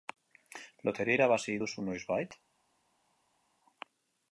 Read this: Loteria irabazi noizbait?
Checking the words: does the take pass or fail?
fail